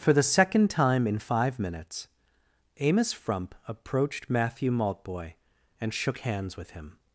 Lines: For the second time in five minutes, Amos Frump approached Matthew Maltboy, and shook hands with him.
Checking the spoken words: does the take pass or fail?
pass